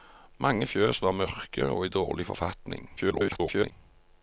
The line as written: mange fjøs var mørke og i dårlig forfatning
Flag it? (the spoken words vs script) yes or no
yes